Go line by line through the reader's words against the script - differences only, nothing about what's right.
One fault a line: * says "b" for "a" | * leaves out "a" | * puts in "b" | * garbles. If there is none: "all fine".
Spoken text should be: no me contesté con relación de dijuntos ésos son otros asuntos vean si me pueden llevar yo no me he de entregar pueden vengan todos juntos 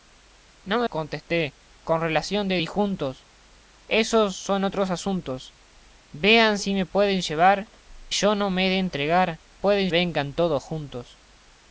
all fine